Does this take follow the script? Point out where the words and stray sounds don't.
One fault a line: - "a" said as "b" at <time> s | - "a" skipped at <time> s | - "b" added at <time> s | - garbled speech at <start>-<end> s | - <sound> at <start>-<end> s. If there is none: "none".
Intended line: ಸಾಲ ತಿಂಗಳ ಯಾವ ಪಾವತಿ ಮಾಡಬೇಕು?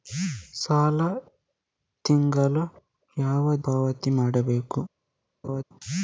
- laugh at 5.4-5.6 s